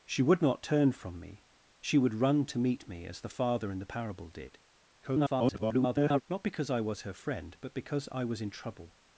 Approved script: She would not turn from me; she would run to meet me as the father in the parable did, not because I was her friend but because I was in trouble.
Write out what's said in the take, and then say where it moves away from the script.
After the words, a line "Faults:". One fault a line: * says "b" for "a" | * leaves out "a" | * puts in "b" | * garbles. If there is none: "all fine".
She would not turn from me; she would run to meet me as the father in the parable did, [garbled] not because I was her friend but because I was in trouble.
Faults:
* garbles